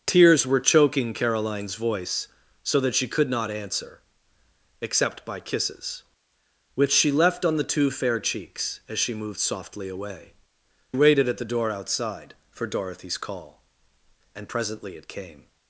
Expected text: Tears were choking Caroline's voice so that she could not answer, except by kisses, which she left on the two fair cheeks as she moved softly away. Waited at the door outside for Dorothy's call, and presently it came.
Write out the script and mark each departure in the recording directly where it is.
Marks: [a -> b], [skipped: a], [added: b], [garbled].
Tears were choking Caroline's voice so that she could not answer, except by kisses, which she left on the two fair cheeks as she moved softly away. Waited at the door outside for Dorothy's call, and presently it came.